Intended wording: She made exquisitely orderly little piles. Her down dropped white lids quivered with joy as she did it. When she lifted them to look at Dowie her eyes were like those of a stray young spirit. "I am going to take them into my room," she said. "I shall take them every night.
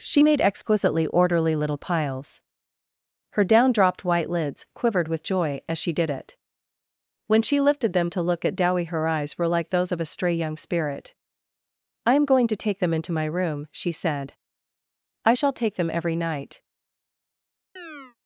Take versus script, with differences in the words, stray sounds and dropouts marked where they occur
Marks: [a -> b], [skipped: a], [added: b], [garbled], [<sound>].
She made exquisitely orderly little piles. Her down dropped white lids quivered with joy as she did it. When she lifted them to look at Dowie her eyes were like those of a stray young spirit. "I am going to take them into my room," she said. "I shall take them every night. [chirp]